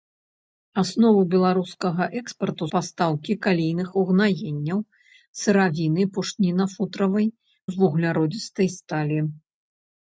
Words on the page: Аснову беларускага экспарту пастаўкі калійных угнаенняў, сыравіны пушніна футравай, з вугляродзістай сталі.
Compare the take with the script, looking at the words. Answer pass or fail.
pass